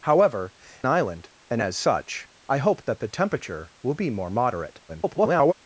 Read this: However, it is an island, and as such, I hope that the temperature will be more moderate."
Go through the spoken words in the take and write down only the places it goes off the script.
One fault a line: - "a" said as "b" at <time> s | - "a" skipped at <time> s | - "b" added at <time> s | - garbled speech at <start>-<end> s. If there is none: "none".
- "it is an" skipped at 0.5 s
- garbled speech at 4.9-5.5 s